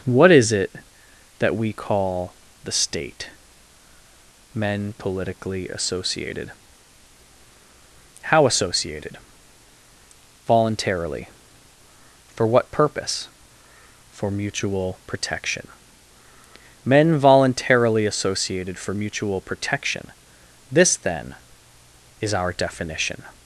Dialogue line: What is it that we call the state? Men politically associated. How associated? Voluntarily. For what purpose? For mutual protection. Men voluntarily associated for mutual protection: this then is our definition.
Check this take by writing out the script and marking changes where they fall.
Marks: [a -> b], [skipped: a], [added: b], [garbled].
What is it that we call the state? Men politically associated. How associated? Voluntarily. For what purpose? For mutual protection. Men voluntarily associated for mutual protection: this then is our definition.